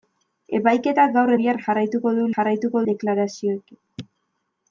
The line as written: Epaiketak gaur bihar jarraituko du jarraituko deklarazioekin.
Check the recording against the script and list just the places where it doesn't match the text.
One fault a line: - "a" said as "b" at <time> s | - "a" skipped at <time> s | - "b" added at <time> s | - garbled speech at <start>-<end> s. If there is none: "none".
none